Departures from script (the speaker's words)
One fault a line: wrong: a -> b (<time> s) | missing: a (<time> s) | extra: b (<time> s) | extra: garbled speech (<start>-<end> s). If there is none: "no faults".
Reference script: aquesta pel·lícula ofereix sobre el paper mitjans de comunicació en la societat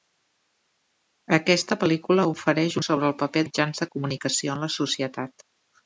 no faults